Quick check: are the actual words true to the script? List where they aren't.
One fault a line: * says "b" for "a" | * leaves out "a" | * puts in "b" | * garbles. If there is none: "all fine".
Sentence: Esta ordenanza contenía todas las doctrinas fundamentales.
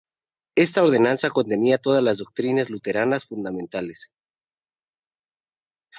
* puts in "luteranas"